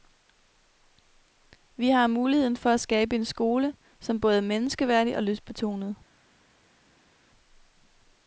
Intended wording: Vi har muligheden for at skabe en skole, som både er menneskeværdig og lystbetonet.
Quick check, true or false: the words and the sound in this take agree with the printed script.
true